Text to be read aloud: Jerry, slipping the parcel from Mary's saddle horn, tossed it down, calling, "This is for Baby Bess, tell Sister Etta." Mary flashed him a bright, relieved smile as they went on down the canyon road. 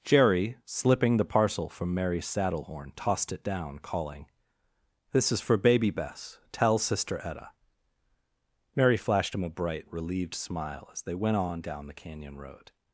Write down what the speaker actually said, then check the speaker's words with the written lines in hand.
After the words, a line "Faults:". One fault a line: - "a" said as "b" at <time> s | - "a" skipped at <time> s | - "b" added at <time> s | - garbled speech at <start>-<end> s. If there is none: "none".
Jerry, slipping the parcel from Mary's saddle horn, tossed it down, calling, "This is for Baby Bess, tell Sister Etta." Mary flashed him a bright, relieved smile as they went on down the canyon road.
Faults:
none